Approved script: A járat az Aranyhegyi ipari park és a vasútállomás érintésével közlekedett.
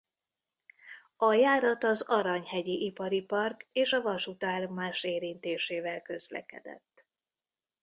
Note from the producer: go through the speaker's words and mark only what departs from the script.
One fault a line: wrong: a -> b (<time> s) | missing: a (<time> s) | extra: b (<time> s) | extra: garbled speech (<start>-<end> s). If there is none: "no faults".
no faults